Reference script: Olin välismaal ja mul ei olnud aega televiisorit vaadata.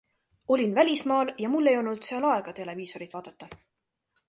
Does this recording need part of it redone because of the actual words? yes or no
yes